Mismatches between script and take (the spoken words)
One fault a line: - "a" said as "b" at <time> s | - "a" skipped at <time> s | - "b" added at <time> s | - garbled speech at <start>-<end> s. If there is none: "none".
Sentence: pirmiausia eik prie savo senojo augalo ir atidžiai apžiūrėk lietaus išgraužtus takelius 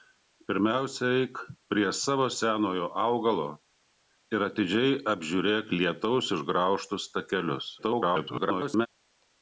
- garbled speech at 7.8-8.9 s